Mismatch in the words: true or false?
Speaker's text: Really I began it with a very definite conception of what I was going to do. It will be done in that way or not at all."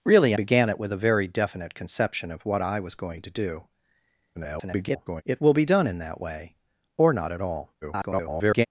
true